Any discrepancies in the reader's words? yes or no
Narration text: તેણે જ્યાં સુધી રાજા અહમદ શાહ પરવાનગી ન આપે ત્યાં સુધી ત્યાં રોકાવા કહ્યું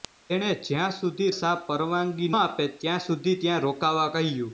yes